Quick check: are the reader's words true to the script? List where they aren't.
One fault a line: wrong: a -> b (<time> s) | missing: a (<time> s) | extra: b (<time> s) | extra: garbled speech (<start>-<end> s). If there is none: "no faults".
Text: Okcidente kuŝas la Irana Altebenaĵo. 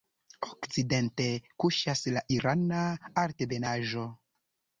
no faults